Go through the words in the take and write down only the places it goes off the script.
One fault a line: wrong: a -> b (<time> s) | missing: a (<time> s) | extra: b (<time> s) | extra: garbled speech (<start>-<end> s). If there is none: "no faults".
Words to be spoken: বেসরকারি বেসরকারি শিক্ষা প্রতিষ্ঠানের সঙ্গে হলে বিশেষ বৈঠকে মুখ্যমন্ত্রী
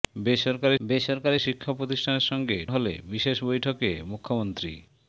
no faults